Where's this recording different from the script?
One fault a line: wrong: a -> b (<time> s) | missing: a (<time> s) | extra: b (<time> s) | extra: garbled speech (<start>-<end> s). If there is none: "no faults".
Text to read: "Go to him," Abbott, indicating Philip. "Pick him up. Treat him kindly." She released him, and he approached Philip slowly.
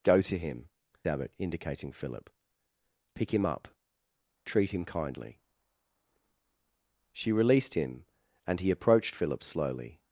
no faults